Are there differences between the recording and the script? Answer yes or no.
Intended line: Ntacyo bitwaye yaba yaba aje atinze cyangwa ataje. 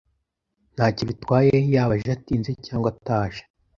yes